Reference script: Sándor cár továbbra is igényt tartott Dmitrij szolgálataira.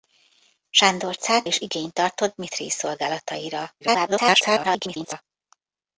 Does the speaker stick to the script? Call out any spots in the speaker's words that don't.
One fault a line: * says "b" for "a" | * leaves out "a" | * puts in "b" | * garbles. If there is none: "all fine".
* leaves out "továbbra"
* garbles